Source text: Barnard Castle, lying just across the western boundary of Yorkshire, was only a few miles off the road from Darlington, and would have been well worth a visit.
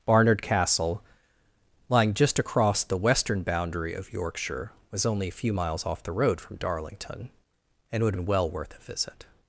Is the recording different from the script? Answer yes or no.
yes